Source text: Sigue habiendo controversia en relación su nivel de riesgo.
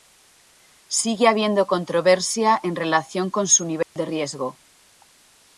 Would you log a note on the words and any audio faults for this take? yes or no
yes